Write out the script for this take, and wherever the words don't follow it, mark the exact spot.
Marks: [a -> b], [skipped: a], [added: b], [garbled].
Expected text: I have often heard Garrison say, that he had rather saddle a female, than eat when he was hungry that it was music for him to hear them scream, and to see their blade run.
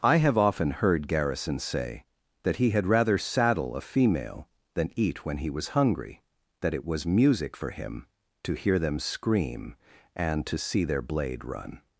I have often heard Garrison say, that he had rather saddle a female, than eat when he was hungry that it was music for him to hear them scream, and to see their blade run.